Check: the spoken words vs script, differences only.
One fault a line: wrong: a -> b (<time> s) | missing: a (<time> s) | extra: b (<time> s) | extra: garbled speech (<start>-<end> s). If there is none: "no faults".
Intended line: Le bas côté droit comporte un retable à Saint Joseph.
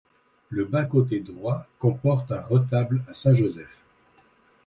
no faults